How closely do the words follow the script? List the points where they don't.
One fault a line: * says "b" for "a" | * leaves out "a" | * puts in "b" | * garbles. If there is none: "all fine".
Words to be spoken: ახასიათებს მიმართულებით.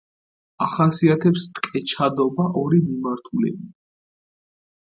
* puts in "ტკეჩადობა ორი"